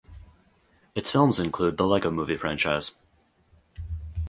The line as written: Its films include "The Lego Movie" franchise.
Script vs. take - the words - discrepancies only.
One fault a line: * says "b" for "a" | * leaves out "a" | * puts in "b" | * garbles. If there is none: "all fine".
all fine